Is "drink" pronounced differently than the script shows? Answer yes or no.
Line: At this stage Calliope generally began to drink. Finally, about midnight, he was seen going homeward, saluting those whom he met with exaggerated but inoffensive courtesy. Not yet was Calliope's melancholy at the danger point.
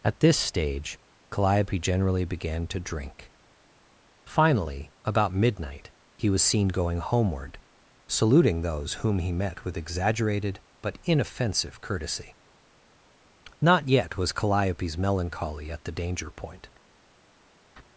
no